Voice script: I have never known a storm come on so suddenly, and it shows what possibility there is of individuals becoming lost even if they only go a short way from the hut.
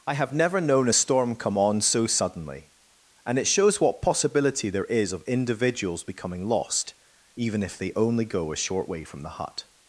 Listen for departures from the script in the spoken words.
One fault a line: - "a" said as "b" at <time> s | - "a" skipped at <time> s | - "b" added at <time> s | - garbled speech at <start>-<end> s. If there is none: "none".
none